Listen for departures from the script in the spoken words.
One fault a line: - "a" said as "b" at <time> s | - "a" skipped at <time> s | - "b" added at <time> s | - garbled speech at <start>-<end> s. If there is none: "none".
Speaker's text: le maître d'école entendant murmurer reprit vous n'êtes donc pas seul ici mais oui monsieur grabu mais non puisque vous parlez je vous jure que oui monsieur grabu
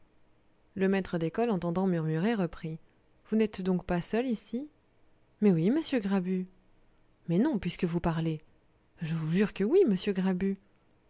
none